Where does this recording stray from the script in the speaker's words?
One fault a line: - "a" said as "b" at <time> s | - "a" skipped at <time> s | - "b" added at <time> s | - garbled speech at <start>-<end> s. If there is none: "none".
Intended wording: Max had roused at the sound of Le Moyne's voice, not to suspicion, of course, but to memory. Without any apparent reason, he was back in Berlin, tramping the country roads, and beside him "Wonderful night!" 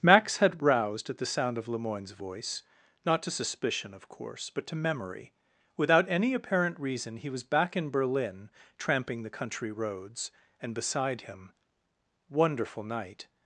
none